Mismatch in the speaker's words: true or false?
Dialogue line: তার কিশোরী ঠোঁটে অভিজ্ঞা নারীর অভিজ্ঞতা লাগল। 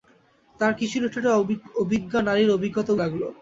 false